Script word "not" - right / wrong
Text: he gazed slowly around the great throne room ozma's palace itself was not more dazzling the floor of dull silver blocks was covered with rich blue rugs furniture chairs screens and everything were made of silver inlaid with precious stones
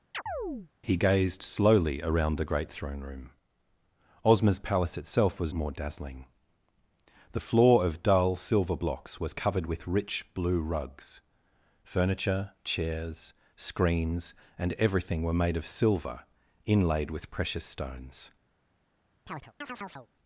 wrong